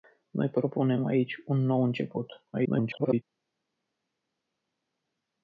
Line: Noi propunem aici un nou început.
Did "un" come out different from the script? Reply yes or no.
no